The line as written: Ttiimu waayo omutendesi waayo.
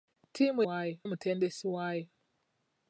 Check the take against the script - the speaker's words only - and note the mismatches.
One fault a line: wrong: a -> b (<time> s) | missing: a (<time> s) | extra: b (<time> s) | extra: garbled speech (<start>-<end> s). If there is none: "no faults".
no faults